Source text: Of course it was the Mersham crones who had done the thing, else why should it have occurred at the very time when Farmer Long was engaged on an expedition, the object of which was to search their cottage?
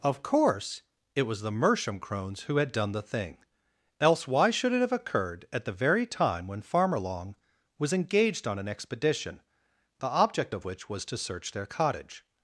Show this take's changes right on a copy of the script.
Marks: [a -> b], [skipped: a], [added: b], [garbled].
Of course it was the Mersham crones who had done the thing, else why should it have occurred at the very time when Farmer Long was engaged on an expedition, the object of which was to search their cottage?